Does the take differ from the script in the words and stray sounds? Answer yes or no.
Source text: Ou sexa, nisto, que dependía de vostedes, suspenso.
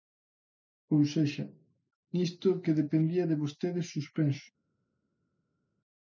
no